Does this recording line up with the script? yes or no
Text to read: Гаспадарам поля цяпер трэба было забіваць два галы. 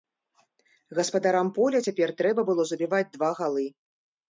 yes